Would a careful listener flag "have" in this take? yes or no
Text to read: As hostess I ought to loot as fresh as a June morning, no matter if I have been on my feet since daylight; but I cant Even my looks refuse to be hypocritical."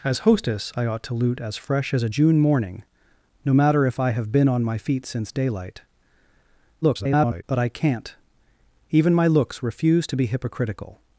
no